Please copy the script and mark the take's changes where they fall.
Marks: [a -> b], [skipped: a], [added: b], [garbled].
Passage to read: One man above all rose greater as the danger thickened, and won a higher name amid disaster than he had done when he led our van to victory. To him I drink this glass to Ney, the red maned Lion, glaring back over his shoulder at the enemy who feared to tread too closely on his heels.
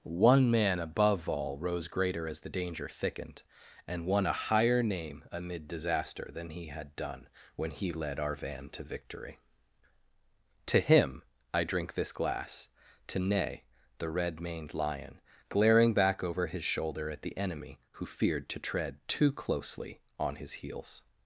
One man above all rose greater as the danger thickened, and won a higher name amid disaster than he had done when he led our van to victory. To him I drink this glass to Ney, the red maned Lion, glaring back over his shoulder at the enemy who feared to tread too closely on his heels.